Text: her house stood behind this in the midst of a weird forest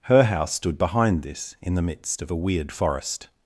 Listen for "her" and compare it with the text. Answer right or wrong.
right